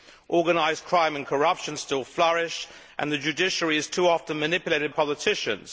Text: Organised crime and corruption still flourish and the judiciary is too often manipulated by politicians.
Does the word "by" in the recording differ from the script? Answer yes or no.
yes